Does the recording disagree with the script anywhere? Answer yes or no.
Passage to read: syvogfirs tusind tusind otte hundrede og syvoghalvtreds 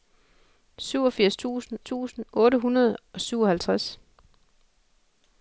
no